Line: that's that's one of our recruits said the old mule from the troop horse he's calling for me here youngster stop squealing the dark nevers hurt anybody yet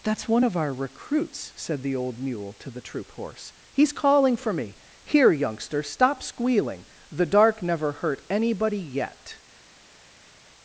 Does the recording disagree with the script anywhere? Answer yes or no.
yes